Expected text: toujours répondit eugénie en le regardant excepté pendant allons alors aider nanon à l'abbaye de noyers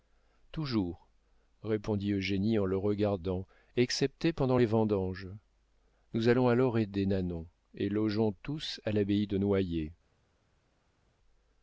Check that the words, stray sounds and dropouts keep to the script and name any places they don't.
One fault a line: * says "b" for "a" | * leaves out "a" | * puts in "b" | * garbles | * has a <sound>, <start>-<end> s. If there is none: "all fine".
* puts in "les vendanges nous"
* puts in "et logeons tous"